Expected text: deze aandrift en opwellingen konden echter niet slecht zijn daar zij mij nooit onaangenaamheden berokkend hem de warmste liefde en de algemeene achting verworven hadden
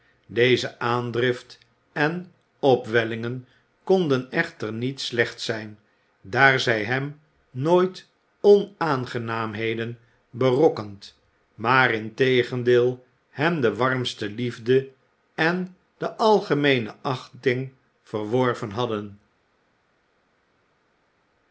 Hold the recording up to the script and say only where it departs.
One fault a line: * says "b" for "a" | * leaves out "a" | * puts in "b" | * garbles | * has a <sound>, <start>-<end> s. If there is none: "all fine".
* says "hem" for "mij"
* puts in "maar integendeel"